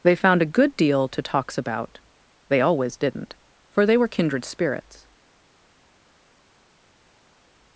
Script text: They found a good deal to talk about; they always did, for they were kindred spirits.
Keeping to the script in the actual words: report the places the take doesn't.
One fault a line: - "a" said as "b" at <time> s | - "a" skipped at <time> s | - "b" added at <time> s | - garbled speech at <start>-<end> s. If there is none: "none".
- "talk" said as "talks" at 1.2 s
- "did" said as "didn't" at 3.0 s